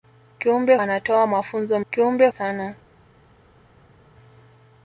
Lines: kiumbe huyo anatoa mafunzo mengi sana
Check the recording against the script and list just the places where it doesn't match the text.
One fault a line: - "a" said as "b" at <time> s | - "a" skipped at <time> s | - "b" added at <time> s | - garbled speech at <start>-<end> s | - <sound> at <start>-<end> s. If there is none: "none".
- "huyo" skipped at 0.8 s
- "mengi" said as "kiumbe" at 1.9 s